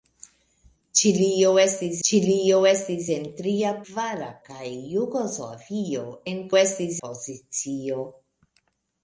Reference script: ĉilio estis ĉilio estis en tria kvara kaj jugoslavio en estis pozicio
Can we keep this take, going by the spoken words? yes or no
yes